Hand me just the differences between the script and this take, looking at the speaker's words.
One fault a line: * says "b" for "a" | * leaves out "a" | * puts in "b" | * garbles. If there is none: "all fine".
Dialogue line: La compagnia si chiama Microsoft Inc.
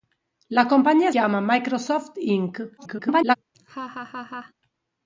* leaves out "si"
* garbles